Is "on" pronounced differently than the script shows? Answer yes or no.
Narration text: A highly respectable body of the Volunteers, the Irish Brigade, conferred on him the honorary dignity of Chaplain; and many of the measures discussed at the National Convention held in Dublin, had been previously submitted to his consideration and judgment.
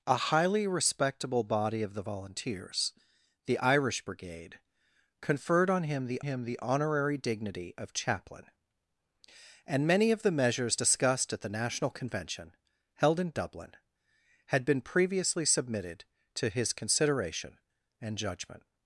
no